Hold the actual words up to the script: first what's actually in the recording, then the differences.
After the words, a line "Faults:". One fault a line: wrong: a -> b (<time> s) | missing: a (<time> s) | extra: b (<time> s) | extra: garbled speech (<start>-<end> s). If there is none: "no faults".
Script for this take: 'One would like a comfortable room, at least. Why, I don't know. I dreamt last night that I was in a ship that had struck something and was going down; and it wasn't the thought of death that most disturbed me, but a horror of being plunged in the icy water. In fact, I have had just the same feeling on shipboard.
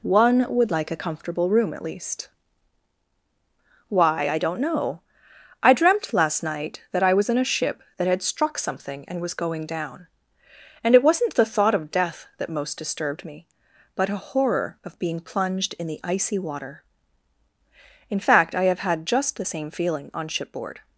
'One would like a comfortable room, at least. Why, I don't know. I dreamt last night that I was in a ship that had struck something and was going down; and it wasn't the thought of death that most disturbed me, but a horror of being plunged in the icy water. In fact, I have had just the same feeling on shipboard.
Faults:
no faults